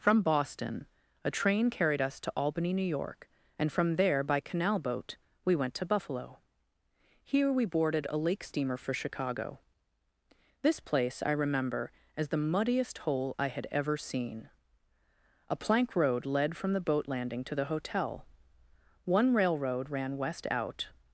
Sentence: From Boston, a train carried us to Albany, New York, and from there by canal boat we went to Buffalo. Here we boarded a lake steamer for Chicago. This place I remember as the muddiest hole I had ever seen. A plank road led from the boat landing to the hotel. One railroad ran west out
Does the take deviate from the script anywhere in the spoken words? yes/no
no